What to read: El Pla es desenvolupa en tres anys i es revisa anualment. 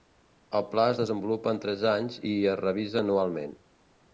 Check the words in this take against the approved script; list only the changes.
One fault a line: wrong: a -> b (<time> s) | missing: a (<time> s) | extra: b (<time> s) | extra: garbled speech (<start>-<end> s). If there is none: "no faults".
no faults